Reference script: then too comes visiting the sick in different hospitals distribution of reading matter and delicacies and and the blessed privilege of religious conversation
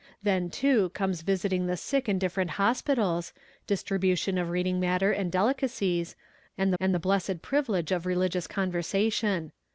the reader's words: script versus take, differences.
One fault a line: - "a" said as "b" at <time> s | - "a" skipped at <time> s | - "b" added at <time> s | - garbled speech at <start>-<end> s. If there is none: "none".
none